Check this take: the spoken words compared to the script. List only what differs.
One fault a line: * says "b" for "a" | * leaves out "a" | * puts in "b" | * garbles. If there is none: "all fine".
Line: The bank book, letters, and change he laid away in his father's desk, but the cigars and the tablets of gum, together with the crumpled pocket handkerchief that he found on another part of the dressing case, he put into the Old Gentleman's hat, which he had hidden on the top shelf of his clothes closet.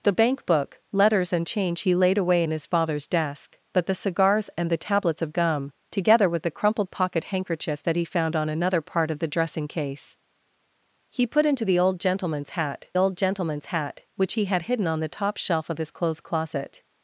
* puts in "Old Gentleman's hat"